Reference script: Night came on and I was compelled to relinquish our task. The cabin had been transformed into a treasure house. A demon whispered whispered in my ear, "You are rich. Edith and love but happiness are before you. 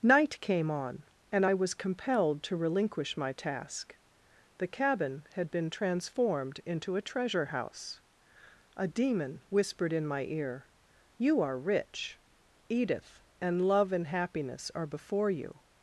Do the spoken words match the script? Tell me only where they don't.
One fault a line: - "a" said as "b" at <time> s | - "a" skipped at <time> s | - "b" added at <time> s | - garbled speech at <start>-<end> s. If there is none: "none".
- "our" said as "my" at 3.2 s
- "whispered" skipped at 9.9 s
- "but" said as "and" at 13.9 s